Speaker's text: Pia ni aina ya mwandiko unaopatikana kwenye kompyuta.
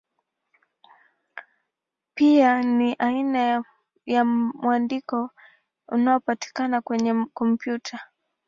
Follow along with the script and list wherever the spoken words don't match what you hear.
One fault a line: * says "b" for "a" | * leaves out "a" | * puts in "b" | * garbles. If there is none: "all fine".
all fine